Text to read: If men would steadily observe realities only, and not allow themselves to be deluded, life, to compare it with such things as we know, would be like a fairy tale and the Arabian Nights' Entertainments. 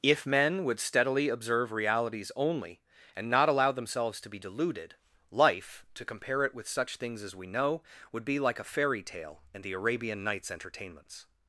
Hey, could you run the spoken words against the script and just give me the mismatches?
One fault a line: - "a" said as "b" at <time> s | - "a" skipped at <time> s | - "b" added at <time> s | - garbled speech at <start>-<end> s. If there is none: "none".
none